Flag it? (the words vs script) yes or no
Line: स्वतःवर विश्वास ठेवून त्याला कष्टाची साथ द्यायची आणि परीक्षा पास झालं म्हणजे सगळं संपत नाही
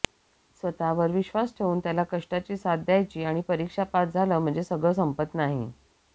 no